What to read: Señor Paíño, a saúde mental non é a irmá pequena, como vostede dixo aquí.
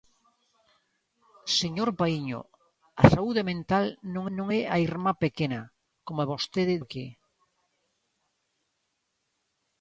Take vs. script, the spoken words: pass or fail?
fail